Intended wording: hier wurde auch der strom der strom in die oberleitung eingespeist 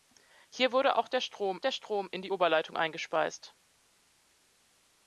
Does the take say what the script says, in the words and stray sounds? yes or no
yes